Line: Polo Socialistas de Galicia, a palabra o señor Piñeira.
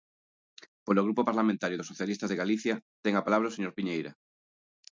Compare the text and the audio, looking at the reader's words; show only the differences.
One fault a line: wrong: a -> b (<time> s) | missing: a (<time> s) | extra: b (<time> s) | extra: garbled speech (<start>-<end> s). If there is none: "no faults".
extra: Grupo Parlamentario dos (1.1 s)
extra: ten (3.0 s)